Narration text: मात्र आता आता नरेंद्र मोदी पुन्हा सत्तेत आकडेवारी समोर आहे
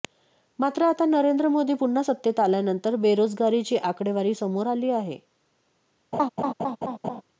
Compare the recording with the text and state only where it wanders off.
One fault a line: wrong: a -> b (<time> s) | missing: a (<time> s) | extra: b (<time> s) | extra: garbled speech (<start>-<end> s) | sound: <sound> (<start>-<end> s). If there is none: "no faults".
missing: आता (1.1 s)
extra: आल्यानंतर बेरोजगारीची (2.4 s)
extra: आली (4.7 s)
sound: laugh (6.1-7.2 s)